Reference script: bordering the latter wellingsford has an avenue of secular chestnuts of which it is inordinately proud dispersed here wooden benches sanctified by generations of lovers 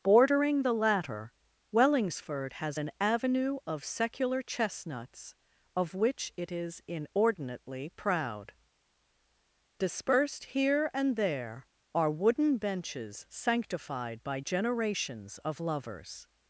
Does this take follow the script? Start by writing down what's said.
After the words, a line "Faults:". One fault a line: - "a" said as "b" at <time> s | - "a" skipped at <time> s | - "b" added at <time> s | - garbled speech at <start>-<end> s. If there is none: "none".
bordering the latter wellingsford has an avenue of secular chestnuts of which it is inordinately proud dispersed here and there are wooden benches sanctified by generations of lovers
Faults:
- "and there are" added at 10.9 s